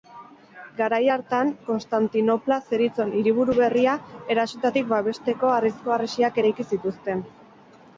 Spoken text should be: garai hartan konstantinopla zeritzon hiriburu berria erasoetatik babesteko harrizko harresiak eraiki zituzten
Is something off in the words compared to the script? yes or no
no